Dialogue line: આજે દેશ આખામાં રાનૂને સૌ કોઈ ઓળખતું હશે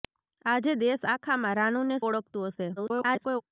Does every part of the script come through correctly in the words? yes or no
no